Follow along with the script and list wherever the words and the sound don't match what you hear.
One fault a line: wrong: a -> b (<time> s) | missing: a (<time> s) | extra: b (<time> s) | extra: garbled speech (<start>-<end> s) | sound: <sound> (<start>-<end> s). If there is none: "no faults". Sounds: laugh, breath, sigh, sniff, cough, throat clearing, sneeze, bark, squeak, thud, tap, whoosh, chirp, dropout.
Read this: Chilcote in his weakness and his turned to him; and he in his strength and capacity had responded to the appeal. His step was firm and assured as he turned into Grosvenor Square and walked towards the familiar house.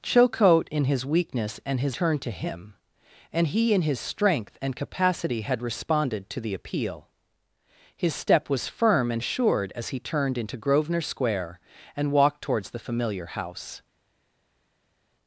no faults